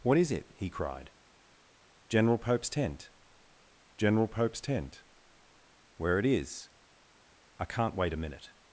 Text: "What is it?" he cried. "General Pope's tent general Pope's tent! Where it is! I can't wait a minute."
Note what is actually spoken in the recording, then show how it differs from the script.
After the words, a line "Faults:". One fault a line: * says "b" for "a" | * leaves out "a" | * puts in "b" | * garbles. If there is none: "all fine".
"What is it?" he cried. "General Pope's tent general Pope's tent! Where it is! I can't wait a minute."
Faults:
all fine